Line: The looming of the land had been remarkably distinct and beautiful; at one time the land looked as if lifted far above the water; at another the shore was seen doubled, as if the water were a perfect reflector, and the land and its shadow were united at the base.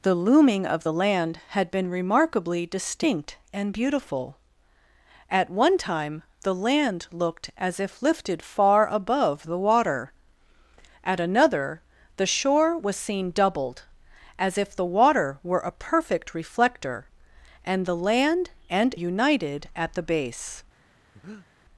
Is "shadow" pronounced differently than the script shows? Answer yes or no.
yes